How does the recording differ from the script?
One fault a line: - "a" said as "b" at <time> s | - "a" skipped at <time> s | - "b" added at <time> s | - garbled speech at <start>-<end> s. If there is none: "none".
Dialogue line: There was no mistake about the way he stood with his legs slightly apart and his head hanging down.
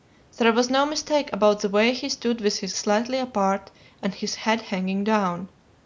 - "legs" skipped at 2.8 s